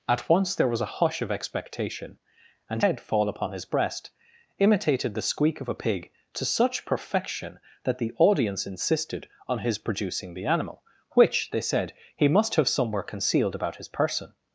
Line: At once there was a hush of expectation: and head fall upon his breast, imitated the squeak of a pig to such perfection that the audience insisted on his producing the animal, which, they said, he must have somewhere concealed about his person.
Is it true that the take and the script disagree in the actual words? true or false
false